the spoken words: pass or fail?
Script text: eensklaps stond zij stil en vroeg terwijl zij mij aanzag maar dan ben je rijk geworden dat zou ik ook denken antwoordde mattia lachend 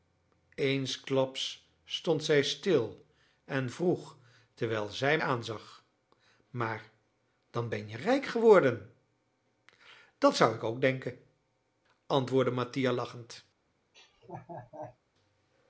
fail